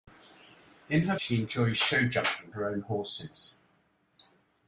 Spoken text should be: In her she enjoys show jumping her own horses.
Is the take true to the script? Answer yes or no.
yes